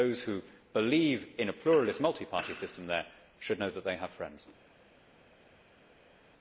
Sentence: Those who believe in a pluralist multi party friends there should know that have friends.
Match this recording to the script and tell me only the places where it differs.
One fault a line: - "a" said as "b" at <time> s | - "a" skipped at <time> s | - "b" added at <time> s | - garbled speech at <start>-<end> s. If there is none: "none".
- "friends" said as "system" at 2.5 s
- "they" added at 3.8 s